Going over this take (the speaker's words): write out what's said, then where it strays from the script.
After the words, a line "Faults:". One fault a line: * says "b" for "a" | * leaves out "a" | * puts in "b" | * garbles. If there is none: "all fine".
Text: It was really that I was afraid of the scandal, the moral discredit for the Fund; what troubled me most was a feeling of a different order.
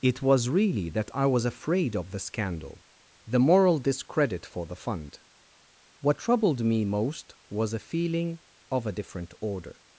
It was really that I was afraid of the scandal, the moral discredit for the Fund; what troubled me most was a feeling of a different order.
Faults:
all fine